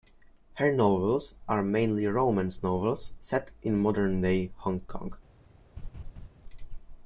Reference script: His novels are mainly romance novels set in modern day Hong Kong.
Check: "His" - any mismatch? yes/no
yes